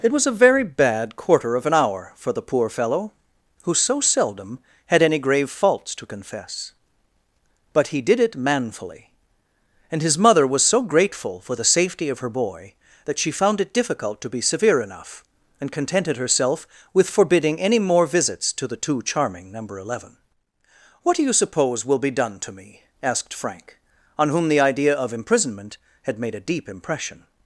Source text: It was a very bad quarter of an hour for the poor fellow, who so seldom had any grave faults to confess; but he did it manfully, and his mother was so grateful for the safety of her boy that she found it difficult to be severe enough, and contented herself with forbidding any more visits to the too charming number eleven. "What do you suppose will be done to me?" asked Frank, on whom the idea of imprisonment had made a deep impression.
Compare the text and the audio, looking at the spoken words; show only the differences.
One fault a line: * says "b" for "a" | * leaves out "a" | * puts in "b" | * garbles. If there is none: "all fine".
all fine